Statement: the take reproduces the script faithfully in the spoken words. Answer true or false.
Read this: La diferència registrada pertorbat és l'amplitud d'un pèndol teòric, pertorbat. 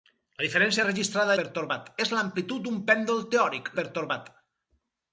true